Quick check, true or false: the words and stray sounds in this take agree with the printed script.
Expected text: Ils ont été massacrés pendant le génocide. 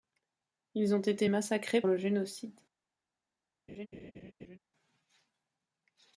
false